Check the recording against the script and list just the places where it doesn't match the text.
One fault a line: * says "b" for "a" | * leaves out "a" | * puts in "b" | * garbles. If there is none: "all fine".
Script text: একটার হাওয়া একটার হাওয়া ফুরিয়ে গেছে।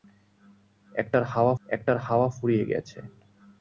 all fine